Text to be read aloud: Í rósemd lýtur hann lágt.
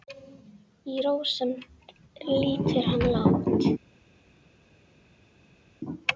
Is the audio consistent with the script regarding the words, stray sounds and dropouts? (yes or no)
yes